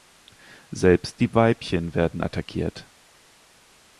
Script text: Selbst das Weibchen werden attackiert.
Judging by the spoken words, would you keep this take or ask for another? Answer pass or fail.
fail